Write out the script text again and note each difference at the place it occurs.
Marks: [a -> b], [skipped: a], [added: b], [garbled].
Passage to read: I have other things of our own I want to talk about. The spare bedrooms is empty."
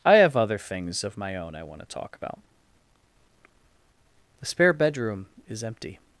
I have other things of [our -> my] own I want to talk about. The spare [bedrooms -> bedroom] is empty."